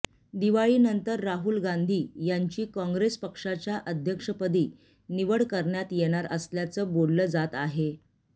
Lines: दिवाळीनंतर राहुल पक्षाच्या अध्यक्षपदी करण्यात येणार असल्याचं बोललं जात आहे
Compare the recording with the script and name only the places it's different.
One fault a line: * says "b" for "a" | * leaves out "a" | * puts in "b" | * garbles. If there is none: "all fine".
* puts in "गांधी यांची काँग्रेस"
* puts in "निवड"